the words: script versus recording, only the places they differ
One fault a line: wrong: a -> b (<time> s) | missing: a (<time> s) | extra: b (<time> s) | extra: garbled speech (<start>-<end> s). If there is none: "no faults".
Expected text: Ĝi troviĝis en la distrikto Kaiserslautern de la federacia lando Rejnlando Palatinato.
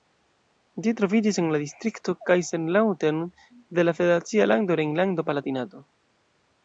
no faults